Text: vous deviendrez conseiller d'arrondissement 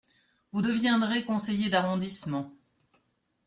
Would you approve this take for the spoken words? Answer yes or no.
yes